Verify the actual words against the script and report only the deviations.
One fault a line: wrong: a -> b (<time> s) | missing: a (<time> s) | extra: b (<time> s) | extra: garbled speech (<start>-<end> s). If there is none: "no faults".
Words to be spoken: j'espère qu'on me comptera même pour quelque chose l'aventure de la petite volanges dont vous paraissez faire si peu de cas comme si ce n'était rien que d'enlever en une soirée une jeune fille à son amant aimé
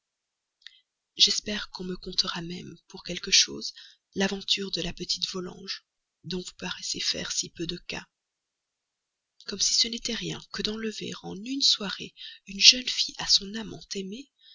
no faults